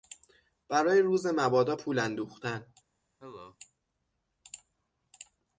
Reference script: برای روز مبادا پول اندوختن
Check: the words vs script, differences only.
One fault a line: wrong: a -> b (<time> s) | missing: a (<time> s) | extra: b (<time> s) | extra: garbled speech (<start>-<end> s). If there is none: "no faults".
no faults